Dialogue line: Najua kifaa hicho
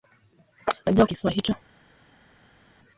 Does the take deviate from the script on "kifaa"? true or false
false